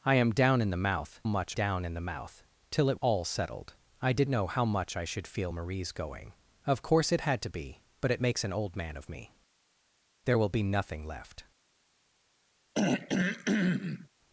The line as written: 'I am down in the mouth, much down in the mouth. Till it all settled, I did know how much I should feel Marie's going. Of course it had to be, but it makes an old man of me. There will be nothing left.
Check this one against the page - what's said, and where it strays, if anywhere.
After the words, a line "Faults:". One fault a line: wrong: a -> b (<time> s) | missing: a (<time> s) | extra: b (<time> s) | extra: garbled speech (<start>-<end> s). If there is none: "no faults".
'I am down in the mouth, much down in the mouth. Till it all settled, I did know how much I should feel Marie's going. Of course it had to be, but it makes an old man of me. There will be nothing left.
Faults:
no faults